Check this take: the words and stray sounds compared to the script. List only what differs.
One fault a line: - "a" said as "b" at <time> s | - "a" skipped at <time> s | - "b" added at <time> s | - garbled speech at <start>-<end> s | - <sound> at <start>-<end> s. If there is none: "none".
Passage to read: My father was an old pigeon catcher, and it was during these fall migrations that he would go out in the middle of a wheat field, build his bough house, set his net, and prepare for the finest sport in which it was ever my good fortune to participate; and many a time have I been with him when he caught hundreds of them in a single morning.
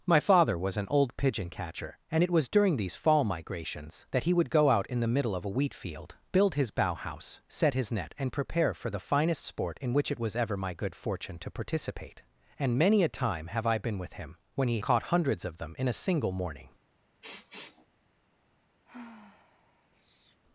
- sniff at 17.2-17.9 s
- sigh at 18.8-20.4 s